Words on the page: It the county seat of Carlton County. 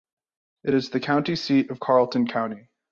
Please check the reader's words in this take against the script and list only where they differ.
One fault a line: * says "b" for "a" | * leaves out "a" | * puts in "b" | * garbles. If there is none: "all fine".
* puts in "is"